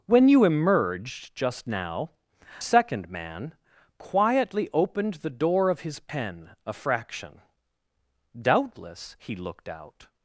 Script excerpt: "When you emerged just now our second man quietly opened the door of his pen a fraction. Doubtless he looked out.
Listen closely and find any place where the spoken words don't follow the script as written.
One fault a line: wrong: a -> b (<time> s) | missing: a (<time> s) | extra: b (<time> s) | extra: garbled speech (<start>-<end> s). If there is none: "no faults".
missing: our (2.1 s)